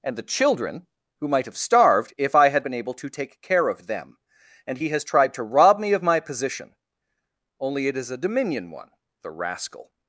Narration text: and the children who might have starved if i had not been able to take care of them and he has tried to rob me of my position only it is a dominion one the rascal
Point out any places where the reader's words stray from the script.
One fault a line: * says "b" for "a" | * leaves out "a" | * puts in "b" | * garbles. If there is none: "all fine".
* leaves out "not"